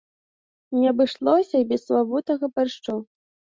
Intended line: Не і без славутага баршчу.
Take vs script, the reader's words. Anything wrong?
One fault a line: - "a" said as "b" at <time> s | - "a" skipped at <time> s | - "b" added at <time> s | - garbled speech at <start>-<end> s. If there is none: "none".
- "абышлося" added at 0.9 s